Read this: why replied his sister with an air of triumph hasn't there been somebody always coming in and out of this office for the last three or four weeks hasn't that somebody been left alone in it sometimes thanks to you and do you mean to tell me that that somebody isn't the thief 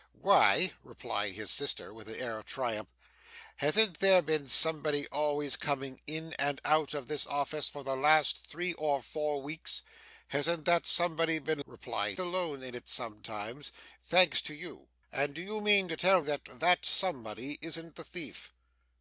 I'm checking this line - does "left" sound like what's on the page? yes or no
no